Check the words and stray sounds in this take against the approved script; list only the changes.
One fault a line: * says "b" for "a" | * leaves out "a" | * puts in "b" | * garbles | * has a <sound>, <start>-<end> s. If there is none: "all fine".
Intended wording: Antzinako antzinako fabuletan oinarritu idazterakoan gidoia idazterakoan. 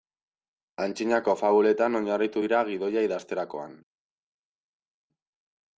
* leaves out "antzinako"
* says "dira" for "idazterakoan"